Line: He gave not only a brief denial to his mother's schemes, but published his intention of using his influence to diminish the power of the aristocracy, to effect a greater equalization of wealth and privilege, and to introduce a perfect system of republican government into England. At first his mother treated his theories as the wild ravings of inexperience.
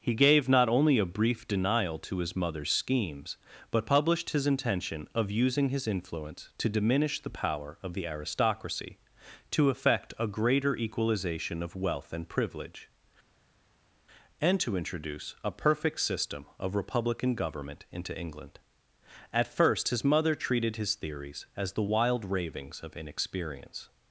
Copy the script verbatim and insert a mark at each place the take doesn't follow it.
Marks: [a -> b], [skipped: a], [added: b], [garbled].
He gave not only a brief denial to his mother's schemes, but published his intention of using his influence to diminish the power of the aristocracy, to effect a greater equalization of wealth and privilege, and to introduce a perfect system of republican government into England. At first his mother treated his theories as the wild ravings of inexperience.